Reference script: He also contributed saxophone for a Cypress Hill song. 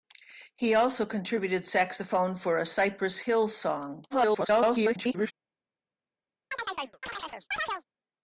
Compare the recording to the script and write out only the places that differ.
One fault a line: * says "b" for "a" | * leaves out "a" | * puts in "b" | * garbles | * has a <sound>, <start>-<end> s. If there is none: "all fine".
* garbles
* has a chirp, 6.5-7.8 s